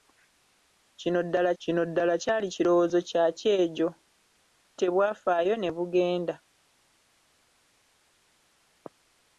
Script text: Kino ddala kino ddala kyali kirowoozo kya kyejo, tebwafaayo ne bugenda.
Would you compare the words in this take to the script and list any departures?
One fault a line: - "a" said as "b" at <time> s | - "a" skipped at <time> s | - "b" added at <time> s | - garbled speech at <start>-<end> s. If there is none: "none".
none